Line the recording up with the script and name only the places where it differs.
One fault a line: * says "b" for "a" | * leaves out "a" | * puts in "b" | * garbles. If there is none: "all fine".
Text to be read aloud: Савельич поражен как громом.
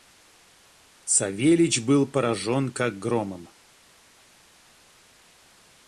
* puts in "был"